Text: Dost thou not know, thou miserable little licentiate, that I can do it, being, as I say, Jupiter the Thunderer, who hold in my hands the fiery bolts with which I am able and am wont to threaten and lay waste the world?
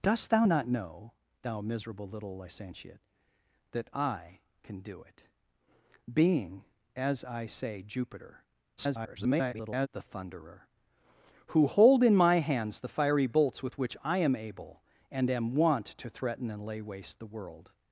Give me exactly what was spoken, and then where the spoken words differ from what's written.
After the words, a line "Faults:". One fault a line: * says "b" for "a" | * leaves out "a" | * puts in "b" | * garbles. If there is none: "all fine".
Dost thou not know, thou miserable little licentiate, that I can do it, being, as I say, Jupiter [garbled] the Thunderer, who hold in my hands the fiery bolts with which I am able and am wont to threaten and lay waste the world?
Faults:
* garbles